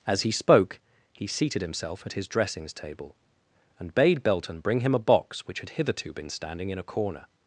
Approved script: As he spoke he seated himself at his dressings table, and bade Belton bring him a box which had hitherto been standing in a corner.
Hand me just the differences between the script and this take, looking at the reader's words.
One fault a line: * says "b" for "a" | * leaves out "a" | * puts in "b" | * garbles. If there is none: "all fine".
all fine